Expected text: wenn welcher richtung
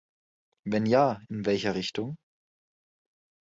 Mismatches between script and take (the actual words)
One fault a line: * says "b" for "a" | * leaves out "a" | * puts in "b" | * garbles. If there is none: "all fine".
* puts in "ja in"